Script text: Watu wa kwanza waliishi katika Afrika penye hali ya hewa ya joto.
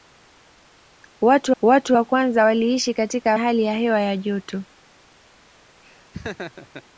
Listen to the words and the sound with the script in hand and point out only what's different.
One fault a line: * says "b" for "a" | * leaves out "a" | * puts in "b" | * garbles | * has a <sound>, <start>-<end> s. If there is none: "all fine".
* puts in "watu"
* leaves out "Afrika penye"
* has a laugh, 5.8-6.8 s